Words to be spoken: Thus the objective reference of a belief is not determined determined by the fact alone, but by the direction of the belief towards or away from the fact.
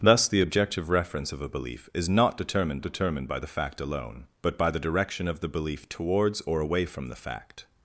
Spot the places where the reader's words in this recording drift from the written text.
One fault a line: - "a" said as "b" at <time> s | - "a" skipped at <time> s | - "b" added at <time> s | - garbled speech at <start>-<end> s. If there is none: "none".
none